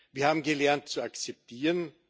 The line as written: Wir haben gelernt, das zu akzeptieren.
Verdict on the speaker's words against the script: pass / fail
fail